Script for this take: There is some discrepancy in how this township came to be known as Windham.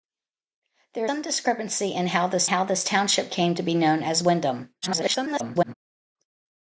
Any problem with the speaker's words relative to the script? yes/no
yes